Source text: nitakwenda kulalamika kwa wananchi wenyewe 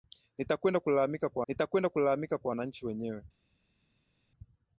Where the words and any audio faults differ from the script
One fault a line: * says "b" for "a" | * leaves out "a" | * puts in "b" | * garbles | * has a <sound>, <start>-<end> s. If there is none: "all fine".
* puts in "nitakwenda kulalamika kwa"